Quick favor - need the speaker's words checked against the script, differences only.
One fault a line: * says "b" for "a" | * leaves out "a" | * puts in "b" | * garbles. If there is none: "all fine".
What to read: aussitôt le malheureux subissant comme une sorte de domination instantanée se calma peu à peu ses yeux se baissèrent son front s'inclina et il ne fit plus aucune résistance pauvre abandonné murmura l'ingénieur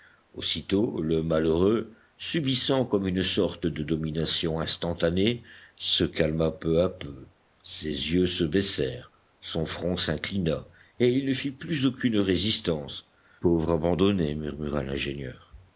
all fine